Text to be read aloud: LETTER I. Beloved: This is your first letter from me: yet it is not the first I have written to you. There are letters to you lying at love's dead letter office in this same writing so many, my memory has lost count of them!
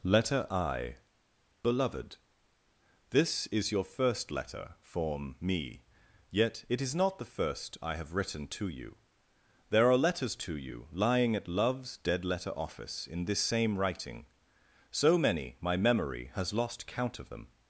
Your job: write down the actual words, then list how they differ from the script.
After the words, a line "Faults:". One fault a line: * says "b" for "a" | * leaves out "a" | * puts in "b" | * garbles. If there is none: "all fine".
LETTER I. Beloved: This is your first letter form me: yet it is not the first I have written to you. There are letters to you lying at love's dead letter office in this same writing so many, my memory has lost count of them!
Faults:
* says "form" for "from"